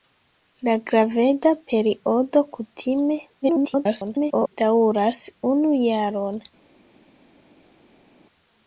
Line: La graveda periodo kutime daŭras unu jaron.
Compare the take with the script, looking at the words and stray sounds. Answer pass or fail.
fail